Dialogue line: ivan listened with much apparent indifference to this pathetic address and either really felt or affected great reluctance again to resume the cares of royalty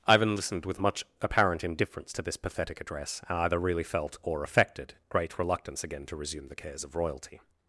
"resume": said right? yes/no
yes